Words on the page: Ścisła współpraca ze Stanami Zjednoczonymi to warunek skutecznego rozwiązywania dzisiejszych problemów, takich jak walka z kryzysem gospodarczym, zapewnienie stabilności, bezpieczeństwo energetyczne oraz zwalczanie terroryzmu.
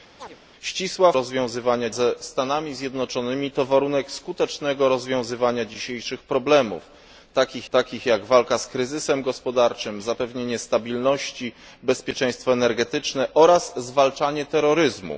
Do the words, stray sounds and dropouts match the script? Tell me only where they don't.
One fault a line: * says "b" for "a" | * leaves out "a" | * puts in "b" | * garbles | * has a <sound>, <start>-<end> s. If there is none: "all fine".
* has a chirp, 0.2-0.4 s
* says "rozwiązywania" for "współpraca"
* puts in "takich"